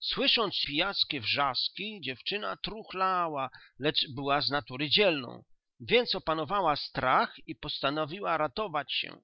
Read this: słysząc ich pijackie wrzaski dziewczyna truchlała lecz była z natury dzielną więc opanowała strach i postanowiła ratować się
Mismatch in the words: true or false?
true